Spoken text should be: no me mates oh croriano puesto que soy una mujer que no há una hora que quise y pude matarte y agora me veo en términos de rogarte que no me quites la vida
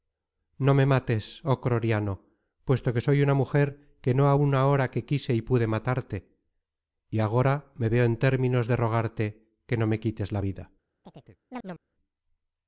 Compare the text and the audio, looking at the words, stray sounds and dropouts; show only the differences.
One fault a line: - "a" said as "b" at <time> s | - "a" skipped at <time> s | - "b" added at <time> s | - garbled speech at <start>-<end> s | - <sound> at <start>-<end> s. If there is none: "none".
- chirp at 11.0-11.8 s